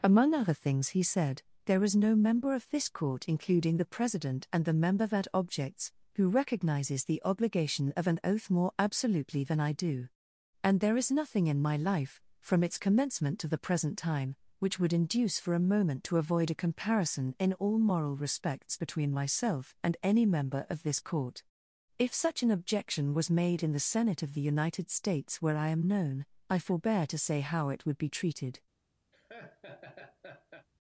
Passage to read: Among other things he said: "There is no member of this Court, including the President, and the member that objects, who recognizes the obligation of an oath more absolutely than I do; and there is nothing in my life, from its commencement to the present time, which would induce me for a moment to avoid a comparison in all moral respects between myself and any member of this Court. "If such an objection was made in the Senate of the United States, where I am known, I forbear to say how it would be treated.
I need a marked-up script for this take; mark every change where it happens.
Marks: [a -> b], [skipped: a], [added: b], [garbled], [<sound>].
Among other things he said: "There is no member of this Court, including the President, and the member that objects, who recognizes the obligation of an oath more absolutely than I do; and there is nothing in my life, from its commencement to the present time, which would induce [skipped: me] for a moment to avoid a comparison in all moral respects between myself and any member of this Court. "If such an objection was made in the Senate of the United States, where I am known, I forbear to say how it would be treated. [laugh]